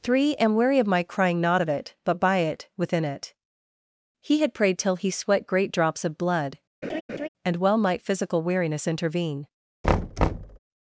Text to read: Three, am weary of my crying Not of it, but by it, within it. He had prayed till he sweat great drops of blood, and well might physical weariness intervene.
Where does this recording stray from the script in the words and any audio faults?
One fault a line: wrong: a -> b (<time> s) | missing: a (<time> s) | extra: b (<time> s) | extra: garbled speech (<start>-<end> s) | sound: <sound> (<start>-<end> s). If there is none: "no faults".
sound: laugh (6.8-7.3 s)
sound: thud (9.8-10.6 s)